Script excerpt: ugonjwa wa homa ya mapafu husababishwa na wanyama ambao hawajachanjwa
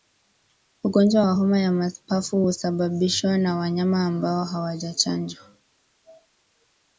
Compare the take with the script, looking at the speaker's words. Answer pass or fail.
pass